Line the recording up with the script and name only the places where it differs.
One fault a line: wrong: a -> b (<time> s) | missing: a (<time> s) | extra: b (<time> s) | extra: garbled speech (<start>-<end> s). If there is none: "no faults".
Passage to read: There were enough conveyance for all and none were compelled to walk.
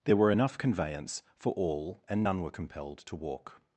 no faults